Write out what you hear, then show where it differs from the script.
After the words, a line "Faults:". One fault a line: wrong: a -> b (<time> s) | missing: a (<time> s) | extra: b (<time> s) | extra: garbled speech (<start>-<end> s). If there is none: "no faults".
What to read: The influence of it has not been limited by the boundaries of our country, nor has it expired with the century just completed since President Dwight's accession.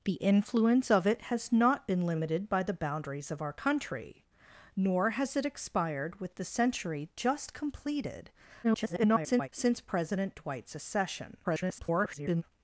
The influence of it has not been limited by the boundaries of our country, nor has it expired with the century just completed [garbled] since President Dwight's accession. [garbled]
Faults:
extra: garbled speech (8.6-9.5 s)
extra: garbled speech (11.4-12.4 s)